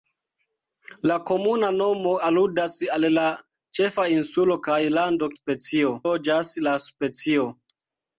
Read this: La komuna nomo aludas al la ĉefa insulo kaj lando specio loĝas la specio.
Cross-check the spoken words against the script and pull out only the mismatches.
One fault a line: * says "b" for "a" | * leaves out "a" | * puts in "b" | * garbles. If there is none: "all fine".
all fine